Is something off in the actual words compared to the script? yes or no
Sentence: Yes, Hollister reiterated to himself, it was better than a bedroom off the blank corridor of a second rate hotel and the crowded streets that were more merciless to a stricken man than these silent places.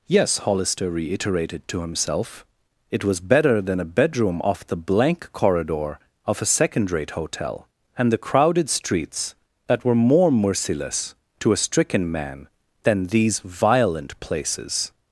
yes